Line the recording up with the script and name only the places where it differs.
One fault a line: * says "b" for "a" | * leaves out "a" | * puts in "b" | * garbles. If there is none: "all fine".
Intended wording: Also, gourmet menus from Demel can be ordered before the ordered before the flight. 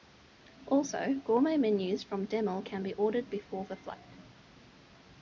* leaves out "ordered before the"